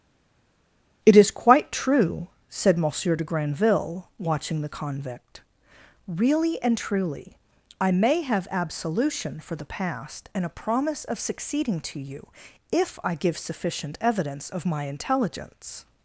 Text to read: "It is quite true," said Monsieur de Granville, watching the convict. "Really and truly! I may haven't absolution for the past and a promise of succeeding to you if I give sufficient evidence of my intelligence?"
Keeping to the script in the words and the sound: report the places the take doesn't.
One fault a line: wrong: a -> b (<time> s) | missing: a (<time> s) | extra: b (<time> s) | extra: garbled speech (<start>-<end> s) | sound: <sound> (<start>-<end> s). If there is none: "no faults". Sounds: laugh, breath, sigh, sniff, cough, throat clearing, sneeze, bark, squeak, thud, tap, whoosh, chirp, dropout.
wrong: haven't -> have (8.2 s)